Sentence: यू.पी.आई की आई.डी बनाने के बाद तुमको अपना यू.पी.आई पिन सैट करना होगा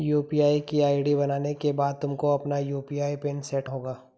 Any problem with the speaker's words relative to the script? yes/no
yes